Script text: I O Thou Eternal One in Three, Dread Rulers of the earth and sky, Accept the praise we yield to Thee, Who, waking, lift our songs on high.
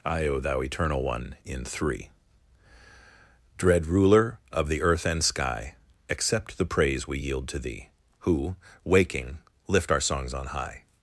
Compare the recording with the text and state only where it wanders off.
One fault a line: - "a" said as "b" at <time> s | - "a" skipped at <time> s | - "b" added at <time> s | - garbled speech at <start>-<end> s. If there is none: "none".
- "Rulers" said as "Ruler" at 3.9 s